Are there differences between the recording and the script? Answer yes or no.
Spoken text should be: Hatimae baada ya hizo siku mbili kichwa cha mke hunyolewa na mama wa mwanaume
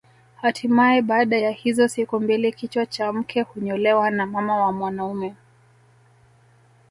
no